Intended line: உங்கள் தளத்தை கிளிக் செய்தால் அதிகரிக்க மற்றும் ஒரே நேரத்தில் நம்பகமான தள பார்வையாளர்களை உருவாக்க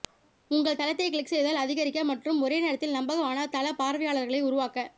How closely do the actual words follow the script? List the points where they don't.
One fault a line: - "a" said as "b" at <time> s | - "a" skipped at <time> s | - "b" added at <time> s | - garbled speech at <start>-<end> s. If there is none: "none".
none